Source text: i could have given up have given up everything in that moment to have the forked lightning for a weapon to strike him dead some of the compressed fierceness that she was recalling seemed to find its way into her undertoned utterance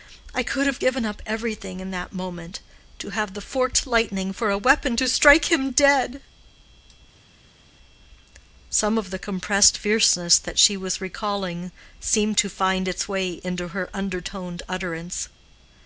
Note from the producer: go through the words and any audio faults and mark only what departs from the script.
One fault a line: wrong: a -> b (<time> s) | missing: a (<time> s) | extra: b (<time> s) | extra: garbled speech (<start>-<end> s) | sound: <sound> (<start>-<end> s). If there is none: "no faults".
missing: have given up (1.2 s)